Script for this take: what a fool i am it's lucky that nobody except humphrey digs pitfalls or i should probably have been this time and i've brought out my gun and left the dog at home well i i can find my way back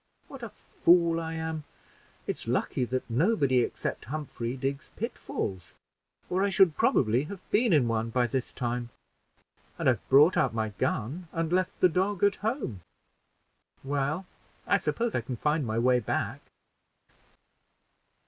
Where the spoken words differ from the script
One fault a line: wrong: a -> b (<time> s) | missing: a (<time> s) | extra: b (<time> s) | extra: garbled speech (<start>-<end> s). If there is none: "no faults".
extra: in one by (7.7 s)
extra: suppose (14.8 s)